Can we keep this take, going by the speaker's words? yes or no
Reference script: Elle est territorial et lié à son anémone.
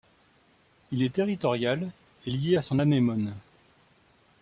no